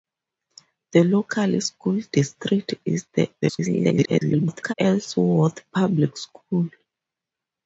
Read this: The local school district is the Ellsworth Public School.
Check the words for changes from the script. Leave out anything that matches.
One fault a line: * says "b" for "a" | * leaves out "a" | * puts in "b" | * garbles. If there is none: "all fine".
* garbles